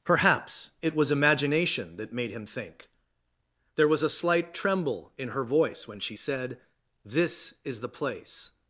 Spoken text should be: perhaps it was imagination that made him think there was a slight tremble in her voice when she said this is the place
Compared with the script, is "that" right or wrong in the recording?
right